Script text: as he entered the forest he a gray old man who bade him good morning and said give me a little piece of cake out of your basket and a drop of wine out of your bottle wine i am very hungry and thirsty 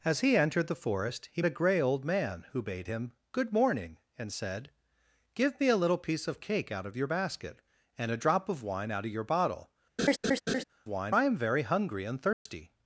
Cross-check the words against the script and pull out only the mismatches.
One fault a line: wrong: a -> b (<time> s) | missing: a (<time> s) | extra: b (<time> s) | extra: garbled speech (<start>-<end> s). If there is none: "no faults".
no faults